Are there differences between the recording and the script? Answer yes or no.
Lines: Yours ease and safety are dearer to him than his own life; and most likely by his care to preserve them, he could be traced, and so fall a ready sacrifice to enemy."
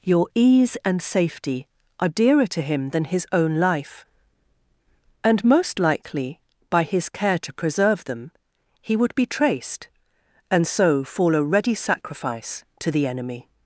yes